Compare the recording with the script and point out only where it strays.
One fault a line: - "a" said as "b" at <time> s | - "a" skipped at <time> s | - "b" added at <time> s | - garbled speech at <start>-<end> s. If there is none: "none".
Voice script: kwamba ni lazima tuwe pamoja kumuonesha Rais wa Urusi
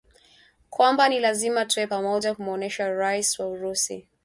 none